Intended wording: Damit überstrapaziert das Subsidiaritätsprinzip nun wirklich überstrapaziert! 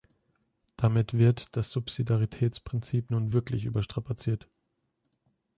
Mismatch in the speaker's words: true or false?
true